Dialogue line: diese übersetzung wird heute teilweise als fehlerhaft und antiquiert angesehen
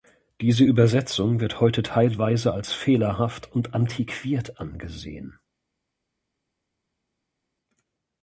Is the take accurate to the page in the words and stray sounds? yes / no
yes